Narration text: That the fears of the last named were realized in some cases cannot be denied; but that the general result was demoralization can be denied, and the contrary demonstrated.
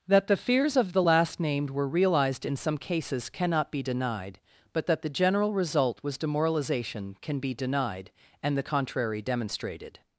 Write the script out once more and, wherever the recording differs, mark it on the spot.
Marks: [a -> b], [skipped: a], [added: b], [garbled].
That the fears of the last named were realized in some cases cannot be denied; but that the general result was demoralization can be denied, and the contrary demonstrated.